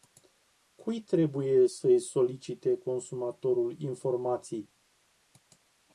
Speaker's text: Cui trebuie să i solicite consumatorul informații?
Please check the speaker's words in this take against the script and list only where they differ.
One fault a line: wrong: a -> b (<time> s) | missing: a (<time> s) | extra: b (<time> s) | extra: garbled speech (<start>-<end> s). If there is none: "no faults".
no faults